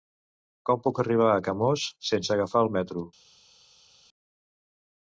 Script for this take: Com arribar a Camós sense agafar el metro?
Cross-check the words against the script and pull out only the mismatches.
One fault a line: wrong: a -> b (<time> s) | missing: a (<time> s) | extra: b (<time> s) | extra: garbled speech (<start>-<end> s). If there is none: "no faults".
extra: puc (0.9 s)